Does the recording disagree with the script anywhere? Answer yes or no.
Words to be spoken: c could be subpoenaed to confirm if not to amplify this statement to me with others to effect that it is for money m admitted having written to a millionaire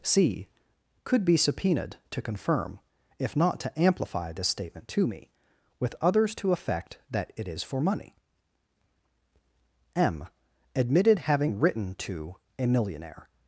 no